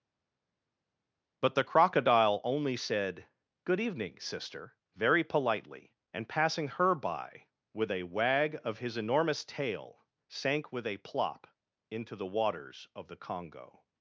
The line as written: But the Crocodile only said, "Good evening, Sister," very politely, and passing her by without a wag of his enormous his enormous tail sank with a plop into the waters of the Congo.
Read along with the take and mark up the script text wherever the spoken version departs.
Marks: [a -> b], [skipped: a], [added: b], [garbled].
But the Crocodile only said, "Good evening, Sister," very politely, and passing her by [without -> with] a wag of his enormous [skipped: his enormous] tail sank with a plop into the waters of the Congo.